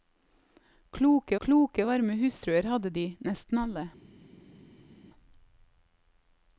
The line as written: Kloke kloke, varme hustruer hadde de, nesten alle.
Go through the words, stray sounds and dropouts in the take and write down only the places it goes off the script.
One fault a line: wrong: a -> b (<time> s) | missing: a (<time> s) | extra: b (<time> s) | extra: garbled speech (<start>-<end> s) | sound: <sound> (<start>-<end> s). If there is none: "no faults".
no faults